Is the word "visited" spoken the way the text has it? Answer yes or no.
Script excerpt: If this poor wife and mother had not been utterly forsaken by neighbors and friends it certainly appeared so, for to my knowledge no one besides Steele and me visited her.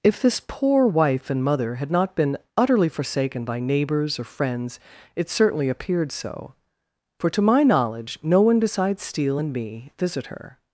no